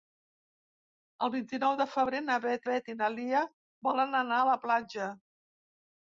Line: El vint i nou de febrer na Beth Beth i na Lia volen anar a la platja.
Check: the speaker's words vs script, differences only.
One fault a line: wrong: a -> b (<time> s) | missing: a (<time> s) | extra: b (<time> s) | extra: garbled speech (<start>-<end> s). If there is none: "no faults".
no faults